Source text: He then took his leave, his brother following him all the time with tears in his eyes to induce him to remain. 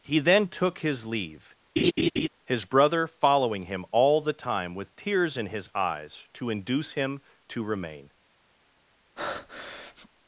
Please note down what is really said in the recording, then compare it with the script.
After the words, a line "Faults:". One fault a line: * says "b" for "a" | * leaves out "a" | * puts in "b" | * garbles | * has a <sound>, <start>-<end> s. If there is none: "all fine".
He then took his leave, his brother following him all the time with tears in his eyes to induce him to remain.
Faults:
* has a laugh, 1.8-2.3 s
* has a breath, 9.2-10.1 s